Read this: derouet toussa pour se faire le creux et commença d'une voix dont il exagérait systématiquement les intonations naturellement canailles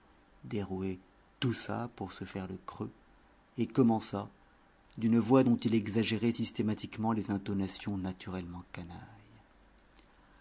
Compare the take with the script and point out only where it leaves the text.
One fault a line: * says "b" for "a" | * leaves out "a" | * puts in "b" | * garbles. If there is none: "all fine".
all fine